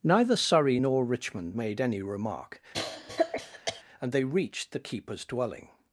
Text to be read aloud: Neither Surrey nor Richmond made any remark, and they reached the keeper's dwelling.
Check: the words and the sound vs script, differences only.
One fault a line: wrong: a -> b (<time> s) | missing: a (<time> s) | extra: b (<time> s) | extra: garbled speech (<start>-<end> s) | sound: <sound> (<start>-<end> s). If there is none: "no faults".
sound: cough (2.7-3.8 s)